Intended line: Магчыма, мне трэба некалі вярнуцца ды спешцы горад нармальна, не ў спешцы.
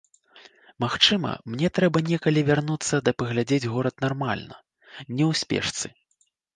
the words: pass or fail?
fail